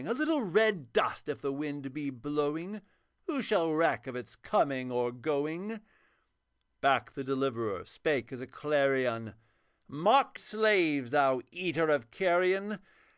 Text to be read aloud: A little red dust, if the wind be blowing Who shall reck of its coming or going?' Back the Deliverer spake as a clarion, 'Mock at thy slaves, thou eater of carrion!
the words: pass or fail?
fail